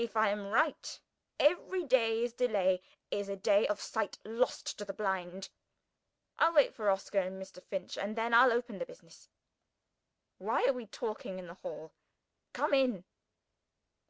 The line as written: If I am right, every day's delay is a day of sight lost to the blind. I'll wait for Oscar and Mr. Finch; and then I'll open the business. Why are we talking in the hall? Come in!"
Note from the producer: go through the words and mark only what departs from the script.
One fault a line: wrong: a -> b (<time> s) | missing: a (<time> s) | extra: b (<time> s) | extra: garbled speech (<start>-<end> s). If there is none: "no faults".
no faults